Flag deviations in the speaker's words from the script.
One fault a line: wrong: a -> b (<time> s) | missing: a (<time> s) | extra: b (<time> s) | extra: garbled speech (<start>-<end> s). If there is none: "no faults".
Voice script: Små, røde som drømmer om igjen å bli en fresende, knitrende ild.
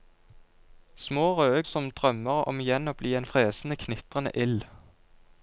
no faults